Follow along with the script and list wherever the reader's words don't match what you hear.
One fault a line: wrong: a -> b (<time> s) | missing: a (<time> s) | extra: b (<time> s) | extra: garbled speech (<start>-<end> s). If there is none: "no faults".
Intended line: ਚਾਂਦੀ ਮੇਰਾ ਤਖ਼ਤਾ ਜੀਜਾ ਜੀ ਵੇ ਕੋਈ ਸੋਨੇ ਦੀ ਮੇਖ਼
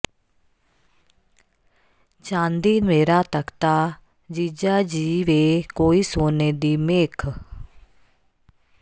no faults